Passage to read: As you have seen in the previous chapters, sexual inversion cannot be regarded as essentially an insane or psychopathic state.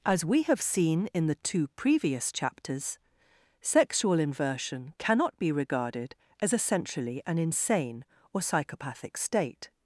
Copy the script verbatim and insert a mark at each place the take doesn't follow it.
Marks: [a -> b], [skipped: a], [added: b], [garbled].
As [you -> we] have seen in the [added: two] previous chapters, sexual inversion cannot be regarded as essentially an insane or psychopathic state.